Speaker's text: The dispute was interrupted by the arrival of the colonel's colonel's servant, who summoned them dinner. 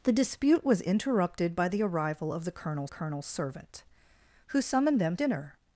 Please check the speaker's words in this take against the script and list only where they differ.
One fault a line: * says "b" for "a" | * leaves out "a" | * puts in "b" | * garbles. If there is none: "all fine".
all fine